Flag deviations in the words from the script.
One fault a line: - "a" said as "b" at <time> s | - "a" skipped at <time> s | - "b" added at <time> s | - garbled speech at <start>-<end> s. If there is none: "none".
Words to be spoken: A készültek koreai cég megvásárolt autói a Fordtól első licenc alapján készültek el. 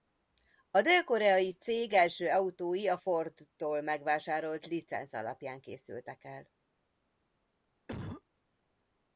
- "készültek" said as "dél" at 0.8 s
- "megvásárolt" said as "első" at 1.9 s
- "első" said as "megvásárolt" at 3.8 s